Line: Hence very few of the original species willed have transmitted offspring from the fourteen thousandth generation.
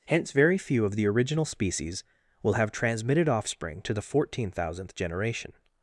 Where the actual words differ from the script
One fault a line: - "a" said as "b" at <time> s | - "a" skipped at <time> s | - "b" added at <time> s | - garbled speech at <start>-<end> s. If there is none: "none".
- "willed" said as "will" at 2.4 s
- "from" said as "to" at 3.8 s